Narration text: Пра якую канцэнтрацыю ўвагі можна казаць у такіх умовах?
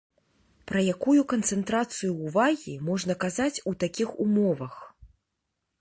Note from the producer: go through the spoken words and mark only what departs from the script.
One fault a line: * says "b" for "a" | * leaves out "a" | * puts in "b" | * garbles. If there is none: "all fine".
all fine